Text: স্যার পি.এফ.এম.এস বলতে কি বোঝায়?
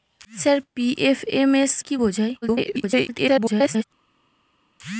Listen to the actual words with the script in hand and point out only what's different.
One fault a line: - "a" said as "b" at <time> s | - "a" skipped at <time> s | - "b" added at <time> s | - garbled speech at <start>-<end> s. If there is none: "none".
- "বলতে" skipped at 1.7 s
- garbled speech at 2.4-3.8 s